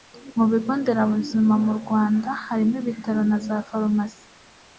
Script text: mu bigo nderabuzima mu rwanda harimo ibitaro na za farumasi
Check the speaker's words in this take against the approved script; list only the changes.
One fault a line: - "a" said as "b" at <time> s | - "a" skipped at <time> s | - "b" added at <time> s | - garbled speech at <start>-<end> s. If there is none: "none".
none